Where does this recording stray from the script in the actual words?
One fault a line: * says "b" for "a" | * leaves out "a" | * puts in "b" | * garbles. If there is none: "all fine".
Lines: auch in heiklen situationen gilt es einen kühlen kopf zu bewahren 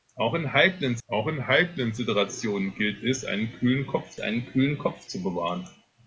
* puts in "auch in heiklen"
* puts in "einen kühlen kopf"